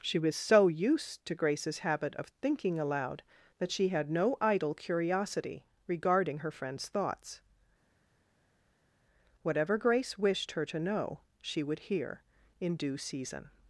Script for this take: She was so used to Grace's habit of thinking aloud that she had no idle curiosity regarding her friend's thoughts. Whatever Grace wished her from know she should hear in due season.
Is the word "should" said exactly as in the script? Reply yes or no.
no